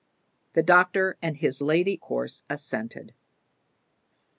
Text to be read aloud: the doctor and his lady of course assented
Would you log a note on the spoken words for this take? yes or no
yes